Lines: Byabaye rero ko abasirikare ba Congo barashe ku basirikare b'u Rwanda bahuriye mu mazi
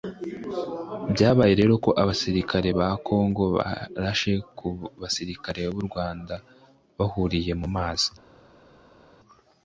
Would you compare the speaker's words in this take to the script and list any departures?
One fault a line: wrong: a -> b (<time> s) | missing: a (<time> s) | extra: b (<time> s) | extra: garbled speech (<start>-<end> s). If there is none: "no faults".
no faults